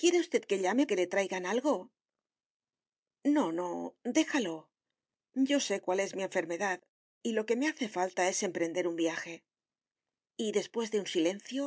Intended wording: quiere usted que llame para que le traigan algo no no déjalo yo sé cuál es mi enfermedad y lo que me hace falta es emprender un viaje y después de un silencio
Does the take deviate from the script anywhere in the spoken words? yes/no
yes